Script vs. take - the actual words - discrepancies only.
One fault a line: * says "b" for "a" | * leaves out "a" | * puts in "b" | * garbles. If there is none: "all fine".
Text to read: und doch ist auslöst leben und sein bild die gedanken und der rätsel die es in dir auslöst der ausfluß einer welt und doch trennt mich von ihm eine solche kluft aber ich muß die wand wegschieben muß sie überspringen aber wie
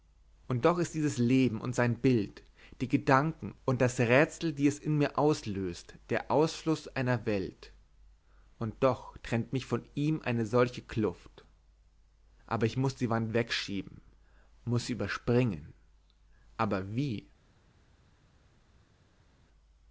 * says "dieses" for "auslöst"
* says "das" for "der"
* says "mir" for "dir"